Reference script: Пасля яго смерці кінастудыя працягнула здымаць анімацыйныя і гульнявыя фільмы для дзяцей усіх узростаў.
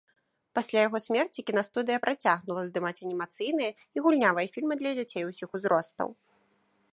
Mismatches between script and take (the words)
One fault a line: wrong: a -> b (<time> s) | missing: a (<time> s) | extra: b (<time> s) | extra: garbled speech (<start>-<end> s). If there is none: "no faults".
no faults